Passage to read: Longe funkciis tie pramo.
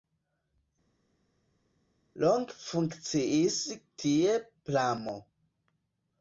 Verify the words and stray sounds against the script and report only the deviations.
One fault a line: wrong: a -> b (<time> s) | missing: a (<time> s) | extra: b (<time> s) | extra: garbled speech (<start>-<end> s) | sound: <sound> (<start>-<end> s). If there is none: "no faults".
no faults